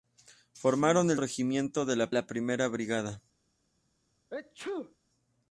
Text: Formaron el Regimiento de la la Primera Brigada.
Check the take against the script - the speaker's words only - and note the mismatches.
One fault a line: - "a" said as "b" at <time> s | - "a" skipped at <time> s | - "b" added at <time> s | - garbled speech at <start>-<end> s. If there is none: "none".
none